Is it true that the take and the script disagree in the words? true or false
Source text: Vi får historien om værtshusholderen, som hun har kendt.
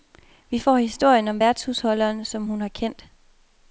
false